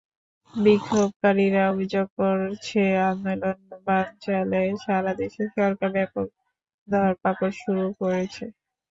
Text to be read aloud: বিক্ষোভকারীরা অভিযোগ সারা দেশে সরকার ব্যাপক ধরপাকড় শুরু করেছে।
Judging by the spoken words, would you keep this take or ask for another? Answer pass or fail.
fail